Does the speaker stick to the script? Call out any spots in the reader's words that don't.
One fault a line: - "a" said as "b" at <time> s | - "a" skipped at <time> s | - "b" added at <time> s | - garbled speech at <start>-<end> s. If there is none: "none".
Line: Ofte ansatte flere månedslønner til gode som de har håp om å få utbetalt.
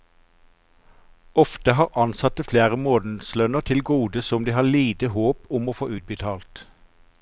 - "har" added at 1.8 s
- "lite" added at 4.7 s